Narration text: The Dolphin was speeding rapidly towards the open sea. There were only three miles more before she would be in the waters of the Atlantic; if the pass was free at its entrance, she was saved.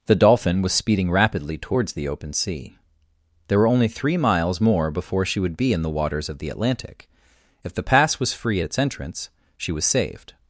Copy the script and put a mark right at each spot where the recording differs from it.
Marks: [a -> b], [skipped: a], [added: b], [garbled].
The Dolphin was speeding rapidly towards the open sea. There were only three miles more before she would be in the waters of the Atlantic; if the pass was free at its entrance, she was saved.